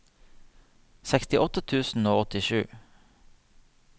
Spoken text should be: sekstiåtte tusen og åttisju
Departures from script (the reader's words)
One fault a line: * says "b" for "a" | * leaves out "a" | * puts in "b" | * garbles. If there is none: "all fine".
all fine